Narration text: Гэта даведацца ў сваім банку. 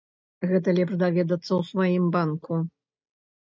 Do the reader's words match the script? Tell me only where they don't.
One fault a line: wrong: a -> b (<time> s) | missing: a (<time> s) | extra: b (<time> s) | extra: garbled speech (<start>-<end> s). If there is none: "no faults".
extra: лепш (0.8 s)